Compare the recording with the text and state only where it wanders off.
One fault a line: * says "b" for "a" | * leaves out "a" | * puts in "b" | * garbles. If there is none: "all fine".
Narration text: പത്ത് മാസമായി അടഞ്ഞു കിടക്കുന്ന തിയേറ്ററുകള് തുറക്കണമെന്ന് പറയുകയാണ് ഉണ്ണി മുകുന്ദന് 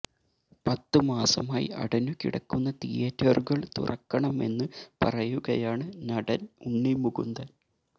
* puts in "നടന്"